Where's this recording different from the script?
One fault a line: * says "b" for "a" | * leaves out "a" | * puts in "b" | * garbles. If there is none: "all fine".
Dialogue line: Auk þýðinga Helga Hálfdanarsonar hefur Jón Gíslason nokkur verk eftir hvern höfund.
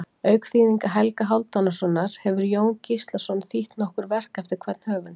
* puts in "þýtt"